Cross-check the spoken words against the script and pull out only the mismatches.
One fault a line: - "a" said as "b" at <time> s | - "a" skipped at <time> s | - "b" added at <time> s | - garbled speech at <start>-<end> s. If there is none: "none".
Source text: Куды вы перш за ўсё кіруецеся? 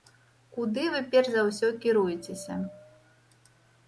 none